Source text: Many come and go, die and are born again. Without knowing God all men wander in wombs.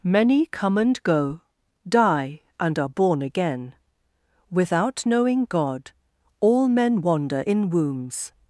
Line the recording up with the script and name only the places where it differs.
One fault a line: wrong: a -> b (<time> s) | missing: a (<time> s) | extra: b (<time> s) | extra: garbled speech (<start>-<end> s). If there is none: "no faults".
no faults